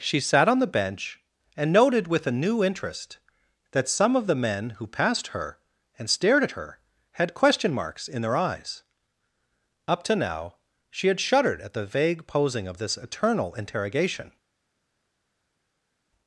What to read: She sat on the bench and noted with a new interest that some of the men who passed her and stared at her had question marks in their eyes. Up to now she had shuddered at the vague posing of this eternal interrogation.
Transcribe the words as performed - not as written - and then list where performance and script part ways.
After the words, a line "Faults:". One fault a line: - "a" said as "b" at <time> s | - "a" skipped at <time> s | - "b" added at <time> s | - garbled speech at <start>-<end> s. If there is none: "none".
She sat on the bench and noted with a new interest that some of the men who passed her and stared at her had question marks in their eyes. Up to now she had shuddered at the vague posing of this eternal interrogation.
Faults:
none